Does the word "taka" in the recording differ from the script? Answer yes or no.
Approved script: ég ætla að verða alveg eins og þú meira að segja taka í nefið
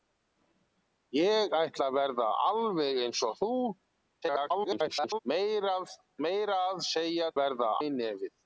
yes